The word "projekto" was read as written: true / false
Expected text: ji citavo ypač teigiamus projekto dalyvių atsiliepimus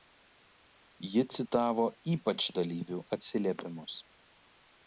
false